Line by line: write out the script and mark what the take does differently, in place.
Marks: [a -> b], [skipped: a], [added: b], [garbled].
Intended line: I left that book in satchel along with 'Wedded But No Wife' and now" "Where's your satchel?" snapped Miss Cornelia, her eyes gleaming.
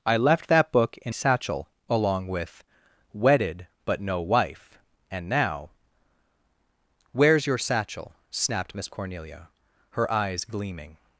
I left that book in satchel along with 'Wedded But No Wife' and now" "Where's your satchel?" snapped Miss Cornelia, her eyes gleaming.